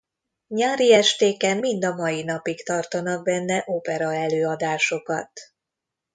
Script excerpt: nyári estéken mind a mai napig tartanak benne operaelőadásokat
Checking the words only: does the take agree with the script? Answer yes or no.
yes